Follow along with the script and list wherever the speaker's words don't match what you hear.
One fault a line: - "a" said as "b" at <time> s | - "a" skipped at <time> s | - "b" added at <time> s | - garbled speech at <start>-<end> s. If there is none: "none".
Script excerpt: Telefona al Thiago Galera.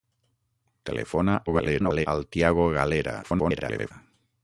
- garbled speech at 1.5-2.1 s
- garbled speech at 3.2-3.9 s